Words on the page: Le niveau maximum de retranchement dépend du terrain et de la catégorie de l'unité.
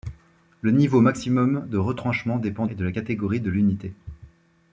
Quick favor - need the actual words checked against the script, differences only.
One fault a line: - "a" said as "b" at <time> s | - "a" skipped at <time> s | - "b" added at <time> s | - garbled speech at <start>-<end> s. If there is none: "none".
- "du terrain" skipped at 2.6 s